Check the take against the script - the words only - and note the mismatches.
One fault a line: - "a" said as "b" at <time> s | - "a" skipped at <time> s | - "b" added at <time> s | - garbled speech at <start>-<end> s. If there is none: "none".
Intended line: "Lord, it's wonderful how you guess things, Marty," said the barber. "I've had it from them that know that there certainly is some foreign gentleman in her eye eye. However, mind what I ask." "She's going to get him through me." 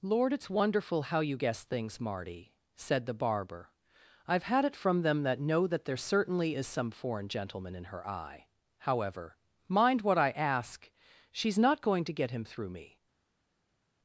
- "eye" skipped at 8.5 s
- "not" added at 11.6 s